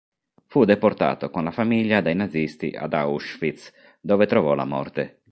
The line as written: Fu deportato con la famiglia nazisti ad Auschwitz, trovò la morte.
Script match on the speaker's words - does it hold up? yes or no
no